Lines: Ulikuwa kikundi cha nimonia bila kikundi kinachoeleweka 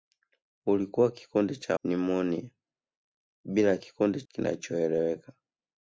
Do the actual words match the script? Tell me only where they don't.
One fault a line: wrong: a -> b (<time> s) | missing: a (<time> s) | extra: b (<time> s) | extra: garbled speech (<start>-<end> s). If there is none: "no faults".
no faults